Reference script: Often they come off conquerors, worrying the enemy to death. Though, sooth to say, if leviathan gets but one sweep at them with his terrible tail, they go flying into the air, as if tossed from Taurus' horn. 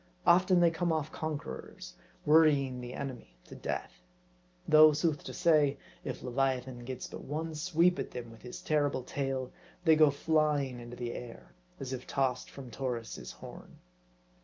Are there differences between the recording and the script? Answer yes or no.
no